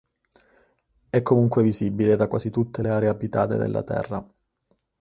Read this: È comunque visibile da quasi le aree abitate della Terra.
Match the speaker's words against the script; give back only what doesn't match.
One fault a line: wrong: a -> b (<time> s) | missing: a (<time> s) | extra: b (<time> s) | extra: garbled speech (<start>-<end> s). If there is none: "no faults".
extra: tutte (2.5 s)